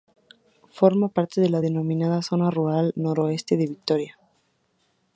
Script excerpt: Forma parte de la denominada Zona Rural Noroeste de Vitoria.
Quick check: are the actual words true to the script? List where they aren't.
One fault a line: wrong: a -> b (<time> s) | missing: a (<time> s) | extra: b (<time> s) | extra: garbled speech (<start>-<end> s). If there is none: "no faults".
no faults